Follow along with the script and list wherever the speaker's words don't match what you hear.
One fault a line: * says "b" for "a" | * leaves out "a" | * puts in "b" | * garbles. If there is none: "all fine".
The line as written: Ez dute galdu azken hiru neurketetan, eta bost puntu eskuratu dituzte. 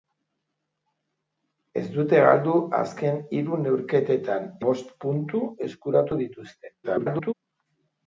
* leaves out "eta"
* garbles